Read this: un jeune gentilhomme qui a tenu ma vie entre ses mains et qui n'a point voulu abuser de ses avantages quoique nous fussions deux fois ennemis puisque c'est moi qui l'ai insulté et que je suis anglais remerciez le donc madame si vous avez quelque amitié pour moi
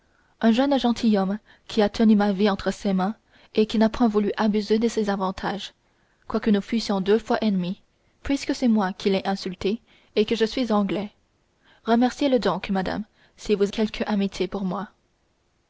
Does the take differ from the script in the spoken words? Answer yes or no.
yes